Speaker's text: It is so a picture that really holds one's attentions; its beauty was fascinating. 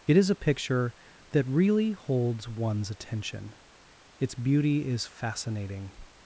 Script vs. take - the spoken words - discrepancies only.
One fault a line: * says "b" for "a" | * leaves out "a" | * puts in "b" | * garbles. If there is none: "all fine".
* leaves out "so"
* says "attention" for "attentions"
* says "is" for "was"